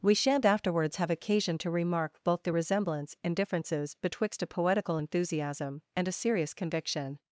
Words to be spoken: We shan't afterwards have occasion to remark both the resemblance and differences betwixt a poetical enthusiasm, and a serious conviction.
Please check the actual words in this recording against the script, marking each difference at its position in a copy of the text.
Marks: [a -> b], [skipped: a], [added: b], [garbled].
We shan't afterwards have occasion to remark both the resemblance and differences betwixt a poetical enthusiasm, and a serious conviction.